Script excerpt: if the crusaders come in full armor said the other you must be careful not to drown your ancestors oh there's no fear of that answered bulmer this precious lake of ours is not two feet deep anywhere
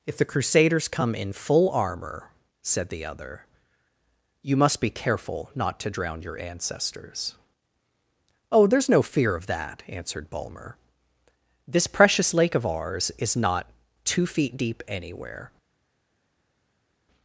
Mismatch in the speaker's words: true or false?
false